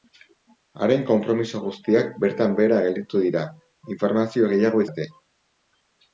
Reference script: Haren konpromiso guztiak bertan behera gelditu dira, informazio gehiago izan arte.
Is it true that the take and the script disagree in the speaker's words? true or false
true